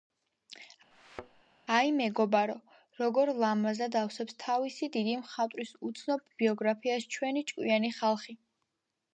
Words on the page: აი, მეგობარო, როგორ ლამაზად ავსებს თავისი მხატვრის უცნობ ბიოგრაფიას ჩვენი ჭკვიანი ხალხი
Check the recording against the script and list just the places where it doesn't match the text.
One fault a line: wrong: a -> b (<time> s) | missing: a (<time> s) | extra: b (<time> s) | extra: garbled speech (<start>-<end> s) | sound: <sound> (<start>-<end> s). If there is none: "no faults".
sound: thud (0.9-1.4 s)
extra: დიდი (5.0 s)